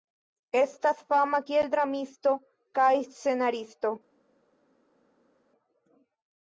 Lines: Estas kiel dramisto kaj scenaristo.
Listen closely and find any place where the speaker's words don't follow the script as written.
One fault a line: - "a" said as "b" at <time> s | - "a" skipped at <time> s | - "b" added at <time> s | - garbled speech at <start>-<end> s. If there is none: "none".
- "fama" added at 1.1 s